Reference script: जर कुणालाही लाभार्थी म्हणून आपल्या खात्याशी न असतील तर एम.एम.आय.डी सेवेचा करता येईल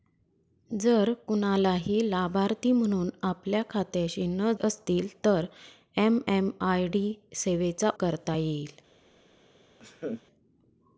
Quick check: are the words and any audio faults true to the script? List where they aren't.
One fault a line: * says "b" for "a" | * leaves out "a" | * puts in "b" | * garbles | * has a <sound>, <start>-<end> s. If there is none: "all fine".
* has a laugh, 9.8-10.2 s